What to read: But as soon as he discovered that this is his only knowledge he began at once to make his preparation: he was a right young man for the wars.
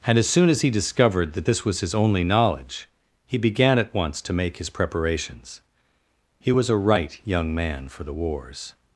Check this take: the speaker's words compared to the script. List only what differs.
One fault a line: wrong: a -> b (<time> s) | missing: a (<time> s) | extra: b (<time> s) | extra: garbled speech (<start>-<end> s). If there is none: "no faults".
wrong: But -> And (0.1 s)
wrong: is -> was (1.7 s)
wrong: preparation -> preparations (4.7 s)